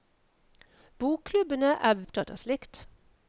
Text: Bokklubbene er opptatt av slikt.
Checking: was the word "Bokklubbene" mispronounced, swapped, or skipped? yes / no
no